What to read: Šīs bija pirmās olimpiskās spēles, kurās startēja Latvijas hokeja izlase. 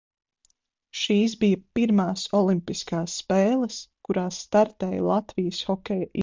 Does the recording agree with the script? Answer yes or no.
yes